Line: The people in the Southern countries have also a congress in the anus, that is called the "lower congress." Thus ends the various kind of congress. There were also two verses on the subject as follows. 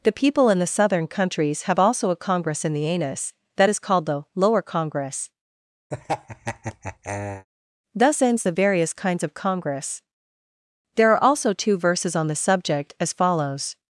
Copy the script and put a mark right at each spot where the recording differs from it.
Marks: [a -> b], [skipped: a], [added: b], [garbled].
The people in the Southern countries have also a congress in the anus, that is called the "lower congress." Thus ends the various [kind -> kinds] of congress. There [were -> are] also two verses on the subject as follows.